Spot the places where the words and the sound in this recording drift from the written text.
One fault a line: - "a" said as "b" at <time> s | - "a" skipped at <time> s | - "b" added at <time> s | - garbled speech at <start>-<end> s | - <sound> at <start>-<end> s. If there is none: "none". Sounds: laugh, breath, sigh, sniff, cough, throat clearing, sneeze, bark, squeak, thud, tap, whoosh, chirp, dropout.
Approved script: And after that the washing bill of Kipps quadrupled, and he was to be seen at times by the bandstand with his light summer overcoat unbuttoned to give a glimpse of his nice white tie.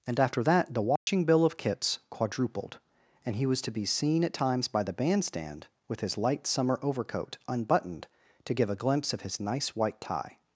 - dropout at 1.0-1.1 s